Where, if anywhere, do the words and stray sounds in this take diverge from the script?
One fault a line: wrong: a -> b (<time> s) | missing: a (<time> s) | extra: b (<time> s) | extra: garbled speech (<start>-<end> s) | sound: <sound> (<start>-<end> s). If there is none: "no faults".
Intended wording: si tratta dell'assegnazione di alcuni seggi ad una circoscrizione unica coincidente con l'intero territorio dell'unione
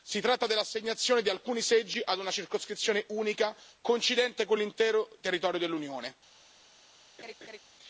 sound: laugh (7.2-7.6 s)